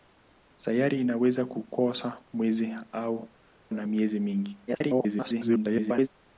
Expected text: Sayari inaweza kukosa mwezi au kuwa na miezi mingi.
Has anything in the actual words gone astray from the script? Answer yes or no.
yes